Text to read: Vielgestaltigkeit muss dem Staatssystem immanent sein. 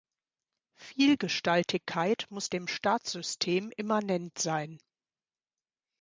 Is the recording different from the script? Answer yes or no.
no